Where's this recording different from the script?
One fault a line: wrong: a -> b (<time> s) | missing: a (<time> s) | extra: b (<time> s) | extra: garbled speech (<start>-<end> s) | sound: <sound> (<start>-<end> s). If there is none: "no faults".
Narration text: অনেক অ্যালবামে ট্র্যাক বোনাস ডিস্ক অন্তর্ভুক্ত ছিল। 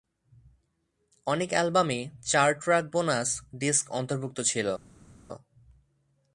extra: চার (2.2 s)